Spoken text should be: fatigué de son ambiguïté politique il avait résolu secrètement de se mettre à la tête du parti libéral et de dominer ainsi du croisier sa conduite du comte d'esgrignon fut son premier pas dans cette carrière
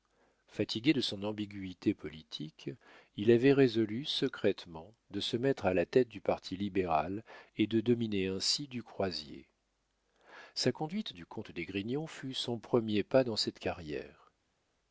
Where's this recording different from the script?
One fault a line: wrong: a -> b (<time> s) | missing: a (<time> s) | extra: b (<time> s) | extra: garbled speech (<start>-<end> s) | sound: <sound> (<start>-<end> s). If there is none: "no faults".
no faults